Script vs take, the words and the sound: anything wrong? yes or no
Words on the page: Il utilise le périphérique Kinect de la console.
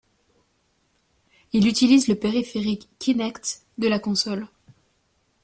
no